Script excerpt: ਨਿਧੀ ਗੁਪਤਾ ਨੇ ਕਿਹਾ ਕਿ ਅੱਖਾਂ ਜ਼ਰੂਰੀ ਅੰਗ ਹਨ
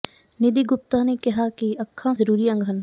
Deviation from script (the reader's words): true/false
false